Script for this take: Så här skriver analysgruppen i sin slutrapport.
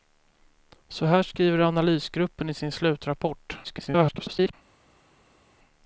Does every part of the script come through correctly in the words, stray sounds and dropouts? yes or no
no